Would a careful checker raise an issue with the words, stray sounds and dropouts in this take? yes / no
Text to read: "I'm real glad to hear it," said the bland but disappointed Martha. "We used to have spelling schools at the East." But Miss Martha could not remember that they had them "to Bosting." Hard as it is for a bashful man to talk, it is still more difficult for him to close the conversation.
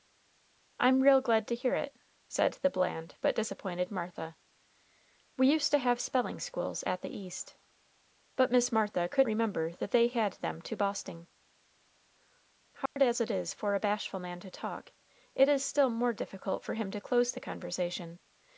yes